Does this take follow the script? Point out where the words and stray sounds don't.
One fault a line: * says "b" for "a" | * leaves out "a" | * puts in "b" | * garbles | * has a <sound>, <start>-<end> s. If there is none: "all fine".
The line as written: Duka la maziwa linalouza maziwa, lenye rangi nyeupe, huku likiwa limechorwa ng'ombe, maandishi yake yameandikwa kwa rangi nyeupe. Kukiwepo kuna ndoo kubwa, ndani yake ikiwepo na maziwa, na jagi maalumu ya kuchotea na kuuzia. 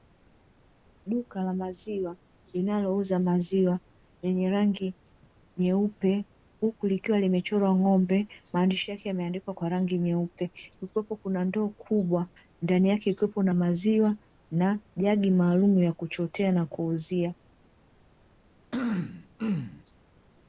* has a throat clearing, 18.7-19.8 s